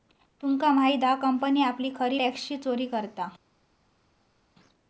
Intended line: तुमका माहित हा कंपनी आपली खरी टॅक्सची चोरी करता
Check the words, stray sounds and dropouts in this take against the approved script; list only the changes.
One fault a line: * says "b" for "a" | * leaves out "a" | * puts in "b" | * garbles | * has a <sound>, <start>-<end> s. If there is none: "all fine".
all fine